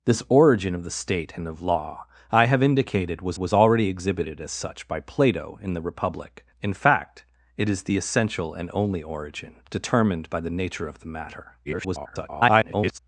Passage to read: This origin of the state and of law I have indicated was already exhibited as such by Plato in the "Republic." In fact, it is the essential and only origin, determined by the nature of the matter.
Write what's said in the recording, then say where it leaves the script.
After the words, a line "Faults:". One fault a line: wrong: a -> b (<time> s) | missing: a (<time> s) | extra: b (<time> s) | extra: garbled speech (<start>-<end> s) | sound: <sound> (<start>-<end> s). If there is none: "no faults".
This origin of the state and of law I have indicated was was already exhibited as such by Plato in the "Republic." In fact, it is the essential and only origin, determined by the nature of the matter. [garbled]
Faults:
extra: was (3.4 s)
extra: garbled speech (11.6-13.0 s)